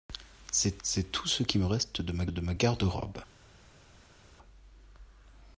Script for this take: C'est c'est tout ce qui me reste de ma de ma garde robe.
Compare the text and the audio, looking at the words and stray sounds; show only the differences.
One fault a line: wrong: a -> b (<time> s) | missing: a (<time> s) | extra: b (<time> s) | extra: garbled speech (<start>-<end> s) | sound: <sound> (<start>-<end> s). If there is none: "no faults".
no faults